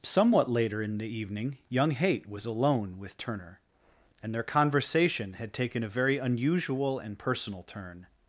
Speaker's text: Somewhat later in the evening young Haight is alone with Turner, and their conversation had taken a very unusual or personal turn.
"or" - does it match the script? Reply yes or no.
no